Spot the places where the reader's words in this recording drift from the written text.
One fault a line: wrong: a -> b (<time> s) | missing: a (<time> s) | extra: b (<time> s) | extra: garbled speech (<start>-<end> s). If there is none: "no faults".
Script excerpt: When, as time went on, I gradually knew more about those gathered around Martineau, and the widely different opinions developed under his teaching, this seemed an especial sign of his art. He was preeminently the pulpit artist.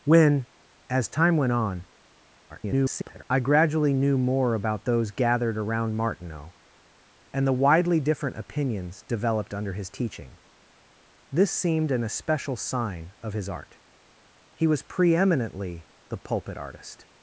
extra: garbled speech (2.5-3.2 s)